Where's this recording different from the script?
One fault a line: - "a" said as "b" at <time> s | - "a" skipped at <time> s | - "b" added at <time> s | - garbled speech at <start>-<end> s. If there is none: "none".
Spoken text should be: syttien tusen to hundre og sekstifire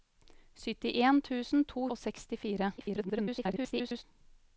- "hundre" skipped at 1.9 s
- garbled speech at 2.8-4.0 s